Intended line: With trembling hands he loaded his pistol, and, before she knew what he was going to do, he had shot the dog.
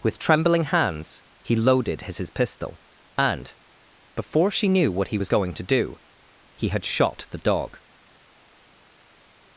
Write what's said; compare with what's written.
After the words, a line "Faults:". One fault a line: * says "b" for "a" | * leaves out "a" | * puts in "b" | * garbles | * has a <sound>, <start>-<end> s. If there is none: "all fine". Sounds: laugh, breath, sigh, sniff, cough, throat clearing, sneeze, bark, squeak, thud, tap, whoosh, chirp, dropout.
With trembling hands he loaded his his pistol, and, before she knew what he was going to do, he had shot the dog.
Faults:
* puts in "his"